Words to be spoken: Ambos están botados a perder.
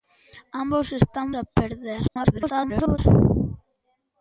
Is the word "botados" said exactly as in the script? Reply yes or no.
no